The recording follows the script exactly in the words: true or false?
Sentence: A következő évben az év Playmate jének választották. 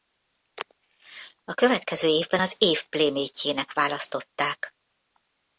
true